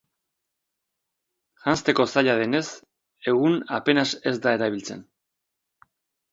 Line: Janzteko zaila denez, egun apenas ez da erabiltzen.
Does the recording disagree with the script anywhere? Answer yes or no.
no